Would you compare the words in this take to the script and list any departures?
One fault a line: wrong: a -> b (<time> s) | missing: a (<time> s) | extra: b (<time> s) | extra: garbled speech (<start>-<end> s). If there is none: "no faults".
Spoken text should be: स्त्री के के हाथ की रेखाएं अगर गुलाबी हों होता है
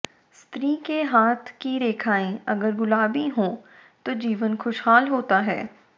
missing: के (1.0 s)
extra: तो जीवन खुशहाल (4.0 s)